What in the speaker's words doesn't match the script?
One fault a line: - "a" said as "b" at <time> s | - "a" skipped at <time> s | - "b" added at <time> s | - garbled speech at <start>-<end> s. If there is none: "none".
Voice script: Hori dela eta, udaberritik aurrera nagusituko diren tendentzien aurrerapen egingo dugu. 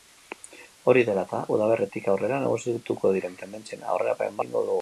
none